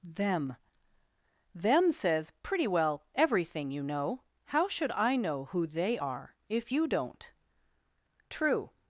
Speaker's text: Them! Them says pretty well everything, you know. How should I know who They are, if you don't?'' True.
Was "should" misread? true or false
false